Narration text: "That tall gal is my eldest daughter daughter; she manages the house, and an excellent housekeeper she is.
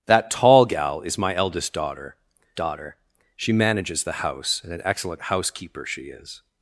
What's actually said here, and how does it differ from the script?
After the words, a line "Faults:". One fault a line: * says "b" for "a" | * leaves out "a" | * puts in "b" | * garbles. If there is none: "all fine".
"That tall gal is my eldest daughter daughter; she manages the house, and an excellent housekeeper she is.
Faults:
all fine